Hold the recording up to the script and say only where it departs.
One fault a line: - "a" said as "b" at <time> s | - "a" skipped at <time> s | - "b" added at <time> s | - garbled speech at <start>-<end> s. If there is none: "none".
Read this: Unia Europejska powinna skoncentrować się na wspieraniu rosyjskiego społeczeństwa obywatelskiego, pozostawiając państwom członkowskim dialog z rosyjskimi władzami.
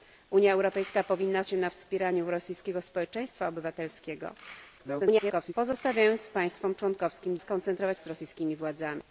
- "skoncentrować" skipped at 1.4 s
- garbled speech at 4.8-5.5 s
- "dialog" said as "skoncentrować" at 7.4 s